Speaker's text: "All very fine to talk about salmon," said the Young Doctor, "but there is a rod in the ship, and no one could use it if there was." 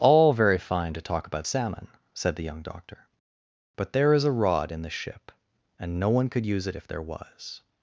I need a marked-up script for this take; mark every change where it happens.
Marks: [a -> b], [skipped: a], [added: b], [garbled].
"All very fine to talk about salmon," said the Young Doctor, "but there is a rod in the ship, and no one could use it if there was."